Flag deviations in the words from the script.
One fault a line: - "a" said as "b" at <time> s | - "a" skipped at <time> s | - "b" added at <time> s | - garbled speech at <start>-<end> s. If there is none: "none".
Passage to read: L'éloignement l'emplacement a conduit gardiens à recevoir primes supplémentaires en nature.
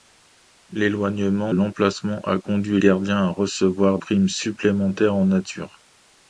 none